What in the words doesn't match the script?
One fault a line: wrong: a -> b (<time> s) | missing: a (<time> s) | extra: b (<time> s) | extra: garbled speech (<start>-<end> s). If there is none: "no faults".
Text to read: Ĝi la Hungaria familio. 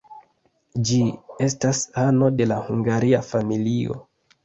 extra: estas ano de (1.5 s)